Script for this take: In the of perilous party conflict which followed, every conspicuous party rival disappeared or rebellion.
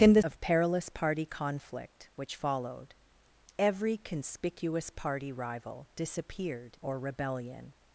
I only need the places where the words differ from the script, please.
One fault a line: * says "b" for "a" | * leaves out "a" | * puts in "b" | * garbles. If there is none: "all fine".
all fine